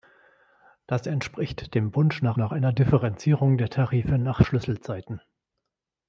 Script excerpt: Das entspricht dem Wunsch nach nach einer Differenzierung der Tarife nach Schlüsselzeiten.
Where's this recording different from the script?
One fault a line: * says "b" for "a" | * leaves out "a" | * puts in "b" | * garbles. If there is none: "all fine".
all fine